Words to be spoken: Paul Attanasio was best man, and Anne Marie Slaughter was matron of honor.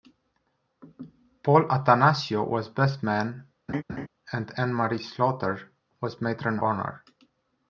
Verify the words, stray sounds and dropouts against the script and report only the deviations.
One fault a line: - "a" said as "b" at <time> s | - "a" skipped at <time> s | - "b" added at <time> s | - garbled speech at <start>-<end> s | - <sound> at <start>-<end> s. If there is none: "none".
- laugh at 3.7-4.1 s
- "of" skipped at 6.6 s